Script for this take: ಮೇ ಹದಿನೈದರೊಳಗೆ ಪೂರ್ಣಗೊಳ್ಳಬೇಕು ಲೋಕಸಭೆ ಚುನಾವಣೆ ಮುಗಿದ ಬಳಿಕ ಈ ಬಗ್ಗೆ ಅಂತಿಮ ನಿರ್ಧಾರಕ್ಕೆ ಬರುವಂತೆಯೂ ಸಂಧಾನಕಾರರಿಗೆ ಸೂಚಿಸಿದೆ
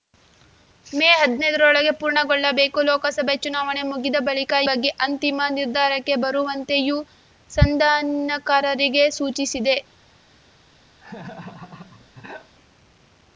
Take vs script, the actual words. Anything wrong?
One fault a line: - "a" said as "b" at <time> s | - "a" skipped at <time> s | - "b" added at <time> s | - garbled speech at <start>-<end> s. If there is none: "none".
- "ಈ" skipped at 4.5 s